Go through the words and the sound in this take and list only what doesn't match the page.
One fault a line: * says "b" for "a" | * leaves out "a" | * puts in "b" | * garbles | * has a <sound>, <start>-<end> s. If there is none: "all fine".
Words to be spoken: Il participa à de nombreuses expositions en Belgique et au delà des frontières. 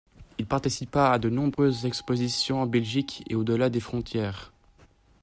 * has a dropout, 1.5-1.6 s